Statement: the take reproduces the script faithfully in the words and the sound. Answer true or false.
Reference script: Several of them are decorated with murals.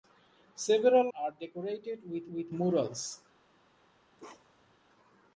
false